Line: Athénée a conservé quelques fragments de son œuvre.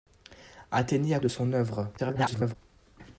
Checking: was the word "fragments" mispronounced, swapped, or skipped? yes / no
yes